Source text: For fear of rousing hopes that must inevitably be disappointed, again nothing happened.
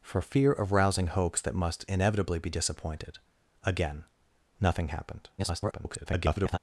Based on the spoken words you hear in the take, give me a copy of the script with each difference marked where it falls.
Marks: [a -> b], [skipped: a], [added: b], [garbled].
For fear of rousing hopes that must inevitably be disappointed, again nothing happened. [garbled]